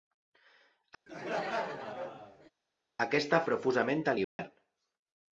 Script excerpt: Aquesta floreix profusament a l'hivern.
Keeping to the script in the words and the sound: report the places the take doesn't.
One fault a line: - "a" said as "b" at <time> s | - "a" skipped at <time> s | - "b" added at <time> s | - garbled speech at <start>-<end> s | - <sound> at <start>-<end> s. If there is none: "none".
- laugh at 1.1-2.5 s
- "floreix" skipped at 3.4 s
- dropout at 4.2-4.4 s